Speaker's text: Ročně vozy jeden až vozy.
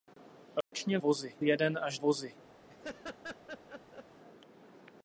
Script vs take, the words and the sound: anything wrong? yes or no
yes